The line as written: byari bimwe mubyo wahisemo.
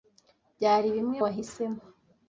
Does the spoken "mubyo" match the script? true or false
false